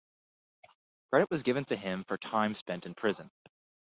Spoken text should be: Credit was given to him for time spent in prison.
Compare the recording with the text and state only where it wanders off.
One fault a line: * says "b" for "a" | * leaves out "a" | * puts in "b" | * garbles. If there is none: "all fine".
all fine